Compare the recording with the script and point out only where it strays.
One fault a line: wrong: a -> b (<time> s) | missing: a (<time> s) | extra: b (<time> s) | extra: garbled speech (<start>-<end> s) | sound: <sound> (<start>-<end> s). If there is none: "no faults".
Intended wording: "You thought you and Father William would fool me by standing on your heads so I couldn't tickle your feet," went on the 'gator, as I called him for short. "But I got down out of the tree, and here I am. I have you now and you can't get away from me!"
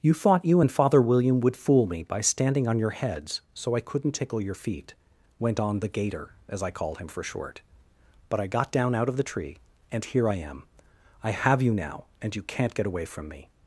no faults